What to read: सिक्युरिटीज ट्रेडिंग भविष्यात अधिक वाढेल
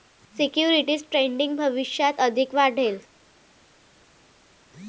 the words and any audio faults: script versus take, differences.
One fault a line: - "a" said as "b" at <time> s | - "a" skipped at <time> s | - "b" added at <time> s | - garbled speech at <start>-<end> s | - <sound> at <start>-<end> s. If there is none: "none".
none